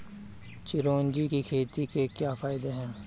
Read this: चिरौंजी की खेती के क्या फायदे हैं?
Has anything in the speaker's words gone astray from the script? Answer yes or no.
no